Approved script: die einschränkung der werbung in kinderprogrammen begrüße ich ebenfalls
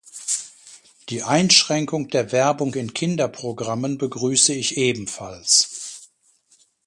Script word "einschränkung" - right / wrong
right